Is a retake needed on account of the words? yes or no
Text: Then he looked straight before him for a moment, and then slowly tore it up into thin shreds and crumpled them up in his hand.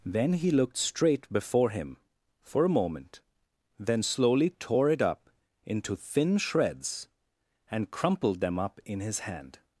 yes